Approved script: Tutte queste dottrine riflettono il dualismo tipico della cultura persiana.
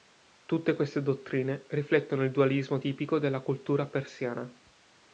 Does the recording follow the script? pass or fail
pass